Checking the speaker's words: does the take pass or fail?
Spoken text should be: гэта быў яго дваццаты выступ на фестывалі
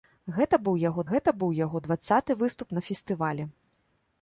fail